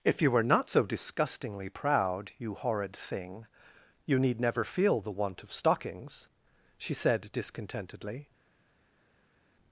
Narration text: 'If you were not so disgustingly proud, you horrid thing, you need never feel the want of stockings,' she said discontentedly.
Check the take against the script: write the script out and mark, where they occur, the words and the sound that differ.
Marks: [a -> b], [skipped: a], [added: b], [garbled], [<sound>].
'If you were not so disgustingly proud, you horrid thing, you need never feel the want of stockings,' she said discontentedly.